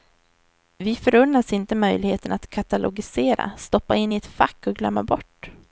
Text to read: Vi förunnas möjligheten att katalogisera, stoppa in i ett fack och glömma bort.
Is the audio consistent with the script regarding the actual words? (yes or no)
no